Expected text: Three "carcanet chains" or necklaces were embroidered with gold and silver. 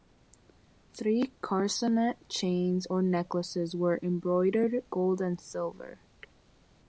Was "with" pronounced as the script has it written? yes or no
no